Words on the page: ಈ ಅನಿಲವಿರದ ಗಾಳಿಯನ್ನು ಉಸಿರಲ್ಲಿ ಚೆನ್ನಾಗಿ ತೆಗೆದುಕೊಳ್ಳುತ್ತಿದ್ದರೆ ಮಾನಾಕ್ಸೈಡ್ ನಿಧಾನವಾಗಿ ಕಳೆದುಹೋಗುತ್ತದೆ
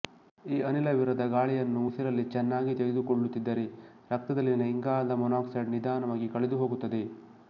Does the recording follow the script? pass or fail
fail